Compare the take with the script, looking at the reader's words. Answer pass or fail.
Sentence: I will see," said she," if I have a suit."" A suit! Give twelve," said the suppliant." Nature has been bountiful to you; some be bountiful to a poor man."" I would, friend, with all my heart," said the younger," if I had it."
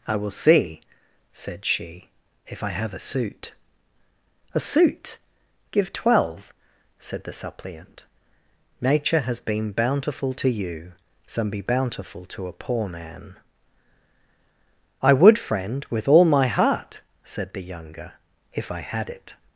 pass